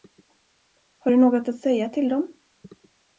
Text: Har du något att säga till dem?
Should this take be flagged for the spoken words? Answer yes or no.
no